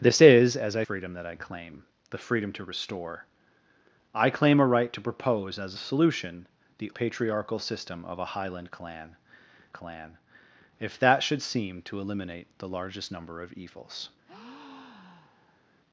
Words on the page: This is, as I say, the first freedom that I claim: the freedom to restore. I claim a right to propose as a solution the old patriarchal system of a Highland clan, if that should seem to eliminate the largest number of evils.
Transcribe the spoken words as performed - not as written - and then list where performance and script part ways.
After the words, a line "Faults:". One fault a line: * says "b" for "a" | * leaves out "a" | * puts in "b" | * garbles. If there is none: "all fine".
This is, as I freedom that I claim: the freedom to restore. I claim a right to propose as a solution the patriarchal system of a Highland clan clan, if that should seem to eliminate the largest number of evils.
Faults:
* leaves out "say the first"
* leaves out "old"
* puts in "clan"